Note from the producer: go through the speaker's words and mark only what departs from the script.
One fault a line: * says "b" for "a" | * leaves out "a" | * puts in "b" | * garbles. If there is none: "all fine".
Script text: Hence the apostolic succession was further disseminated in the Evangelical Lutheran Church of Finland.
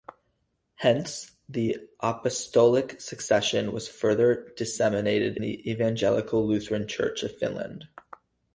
* leaves out "in"